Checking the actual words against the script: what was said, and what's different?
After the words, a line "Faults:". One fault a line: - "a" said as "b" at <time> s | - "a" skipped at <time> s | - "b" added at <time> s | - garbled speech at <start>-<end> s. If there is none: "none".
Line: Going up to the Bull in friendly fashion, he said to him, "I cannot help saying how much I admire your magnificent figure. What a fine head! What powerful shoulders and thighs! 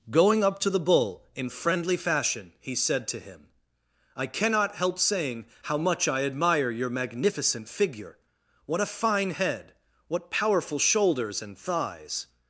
Going up to the Bull in friendly fashion, he said to him, "I cannot help saying how much I admire your magnificent figure. What a fine head! What powerful shoulders and thighs!
Faults:
none